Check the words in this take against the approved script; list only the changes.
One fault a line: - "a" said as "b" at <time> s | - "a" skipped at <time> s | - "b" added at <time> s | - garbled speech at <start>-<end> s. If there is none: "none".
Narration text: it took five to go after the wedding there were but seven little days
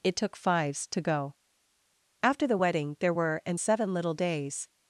- "five" said as "fives" at 0.3 s
- "but" said as "and" at 3.5 s